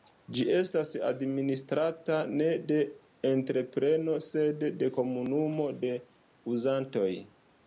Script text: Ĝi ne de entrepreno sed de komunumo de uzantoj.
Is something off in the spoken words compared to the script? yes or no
yes